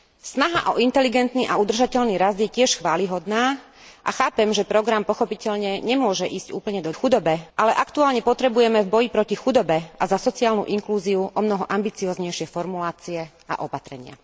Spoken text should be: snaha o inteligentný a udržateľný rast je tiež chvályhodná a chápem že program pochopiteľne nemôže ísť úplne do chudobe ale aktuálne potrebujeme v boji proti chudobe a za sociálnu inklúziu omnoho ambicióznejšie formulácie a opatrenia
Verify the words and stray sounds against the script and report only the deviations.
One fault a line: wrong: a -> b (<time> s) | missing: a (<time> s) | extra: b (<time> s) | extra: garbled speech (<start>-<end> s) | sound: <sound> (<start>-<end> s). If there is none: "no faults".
no faults